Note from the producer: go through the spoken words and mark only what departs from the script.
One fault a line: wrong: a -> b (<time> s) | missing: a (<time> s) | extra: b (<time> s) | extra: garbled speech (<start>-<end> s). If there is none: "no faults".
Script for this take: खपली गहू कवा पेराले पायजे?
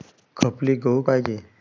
missing: कवा पेराले (1.0 s)